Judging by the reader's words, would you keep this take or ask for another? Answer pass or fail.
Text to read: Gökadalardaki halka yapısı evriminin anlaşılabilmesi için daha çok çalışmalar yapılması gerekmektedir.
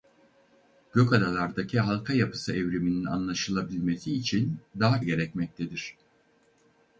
fail